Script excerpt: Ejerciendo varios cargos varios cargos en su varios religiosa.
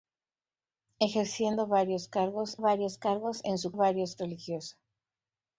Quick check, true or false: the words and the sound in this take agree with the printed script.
true